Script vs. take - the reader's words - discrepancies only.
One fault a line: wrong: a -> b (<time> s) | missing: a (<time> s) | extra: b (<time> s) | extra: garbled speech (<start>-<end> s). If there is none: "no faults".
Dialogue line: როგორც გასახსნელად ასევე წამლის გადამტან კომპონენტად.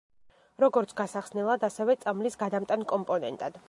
no faults